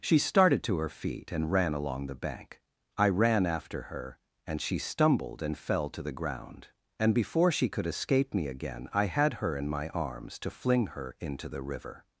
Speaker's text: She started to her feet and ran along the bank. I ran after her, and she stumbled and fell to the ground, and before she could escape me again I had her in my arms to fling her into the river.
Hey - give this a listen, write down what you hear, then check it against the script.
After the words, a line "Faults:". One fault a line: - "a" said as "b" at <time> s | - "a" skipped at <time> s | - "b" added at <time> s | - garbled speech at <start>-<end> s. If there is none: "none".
She started to her feet and ran along the bank. I ran after her, and she stumbled and fell to the ground, and before she could escape me again I had her in my arms to fling her into the river.
Faults:
none